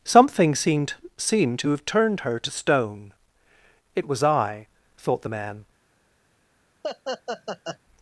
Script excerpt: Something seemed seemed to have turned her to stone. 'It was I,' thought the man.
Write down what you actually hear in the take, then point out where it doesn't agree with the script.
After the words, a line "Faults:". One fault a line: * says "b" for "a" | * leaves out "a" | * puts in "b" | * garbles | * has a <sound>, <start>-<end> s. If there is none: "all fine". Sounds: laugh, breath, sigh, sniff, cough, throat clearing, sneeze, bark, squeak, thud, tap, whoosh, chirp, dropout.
Something seemed seemed to have turned her to stone. 'It was I,' thought the man.
Faults:
* has a laugh, 6.8-7.8 s